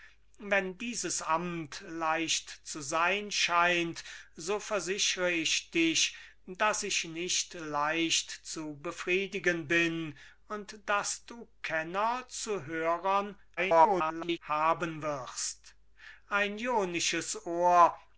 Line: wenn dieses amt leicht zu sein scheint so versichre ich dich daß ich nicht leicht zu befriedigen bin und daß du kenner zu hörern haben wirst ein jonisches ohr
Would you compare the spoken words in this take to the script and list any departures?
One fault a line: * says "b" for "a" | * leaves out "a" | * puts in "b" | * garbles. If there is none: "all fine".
* garbles